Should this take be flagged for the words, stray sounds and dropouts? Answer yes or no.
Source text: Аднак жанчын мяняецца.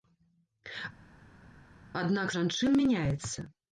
no